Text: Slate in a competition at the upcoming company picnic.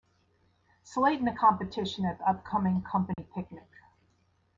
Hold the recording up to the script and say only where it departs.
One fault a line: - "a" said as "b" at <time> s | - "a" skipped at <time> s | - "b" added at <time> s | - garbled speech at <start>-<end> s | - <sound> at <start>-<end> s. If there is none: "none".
- dropout at 3.1-3.2 s